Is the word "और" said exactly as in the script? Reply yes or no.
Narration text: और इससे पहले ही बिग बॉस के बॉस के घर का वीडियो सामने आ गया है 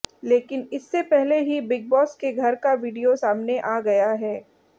no